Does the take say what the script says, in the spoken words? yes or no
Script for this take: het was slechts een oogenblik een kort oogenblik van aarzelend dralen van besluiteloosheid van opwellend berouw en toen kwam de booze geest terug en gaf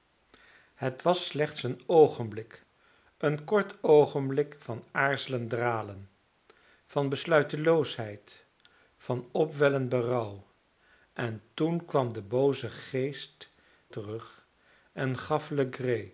yes